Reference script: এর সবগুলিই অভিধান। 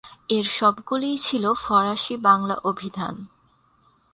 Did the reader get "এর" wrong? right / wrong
right